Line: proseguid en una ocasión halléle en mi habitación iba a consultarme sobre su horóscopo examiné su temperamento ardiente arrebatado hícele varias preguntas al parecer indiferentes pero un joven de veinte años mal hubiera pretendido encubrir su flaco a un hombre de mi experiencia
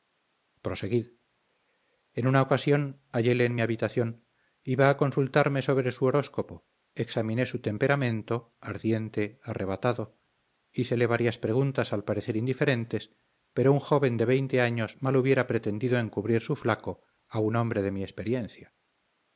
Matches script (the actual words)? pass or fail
pass